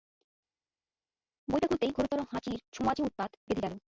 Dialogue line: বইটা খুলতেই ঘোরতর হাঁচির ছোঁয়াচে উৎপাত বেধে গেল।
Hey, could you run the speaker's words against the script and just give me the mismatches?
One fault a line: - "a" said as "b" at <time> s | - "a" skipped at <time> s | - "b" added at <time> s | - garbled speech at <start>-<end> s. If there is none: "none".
none